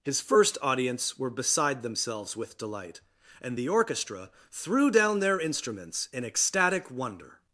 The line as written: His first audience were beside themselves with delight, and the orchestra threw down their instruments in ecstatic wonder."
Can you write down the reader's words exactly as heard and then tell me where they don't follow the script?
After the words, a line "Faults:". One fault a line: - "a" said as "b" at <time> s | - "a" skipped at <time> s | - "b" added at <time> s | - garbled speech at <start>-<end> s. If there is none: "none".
His first audience were beside themselves with delight, and the orchestra threw down their instruments in ecstatic wonder."
Faults:
none